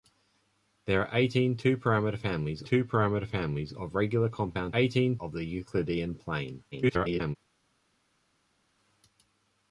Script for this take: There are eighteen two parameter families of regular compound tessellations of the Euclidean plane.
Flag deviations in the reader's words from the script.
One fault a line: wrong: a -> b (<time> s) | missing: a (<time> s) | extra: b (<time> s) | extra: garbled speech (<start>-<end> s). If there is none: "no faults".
extra: two parameter families (2.6 s)
wrong: tessellations -> eighteen (4.8 s)
extra: garbled speech (6.7-7.4 s)